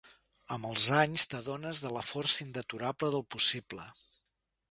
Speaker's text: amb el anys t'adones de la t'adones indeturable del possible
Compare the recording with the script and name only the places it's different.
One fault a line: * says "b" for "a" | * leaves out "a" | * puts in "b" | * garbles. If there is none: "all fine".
* says "els" for "el"
* says "força" for "t'adones"